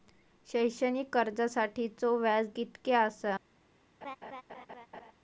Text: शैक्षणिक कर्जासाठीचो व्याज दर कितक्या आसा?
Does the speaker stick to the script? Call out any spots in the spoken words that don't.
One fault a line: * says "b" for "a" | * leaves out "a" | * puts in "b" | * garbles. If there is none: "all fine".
* leaves out "दर"